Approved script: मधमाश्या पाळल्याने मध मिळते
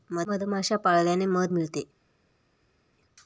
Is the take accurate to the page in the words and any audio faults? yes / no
yes